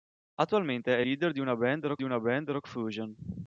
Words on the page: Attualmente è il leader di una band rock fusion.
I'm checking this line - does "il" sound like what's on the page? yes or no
no